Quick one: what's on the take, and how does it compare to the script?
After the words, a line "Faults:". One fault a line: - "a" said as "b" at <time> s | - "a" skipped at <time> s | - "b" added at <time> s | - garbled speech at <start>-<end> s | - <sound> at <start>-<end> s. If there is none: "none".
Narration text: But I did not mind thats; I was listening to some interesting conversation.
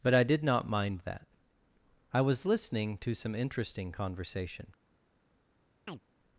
But I did not mind that; I was listening to some interesting conversation.
Faults:
- "thats" said as "that" at 1.0 s
- chirp at 5.9-6.0 s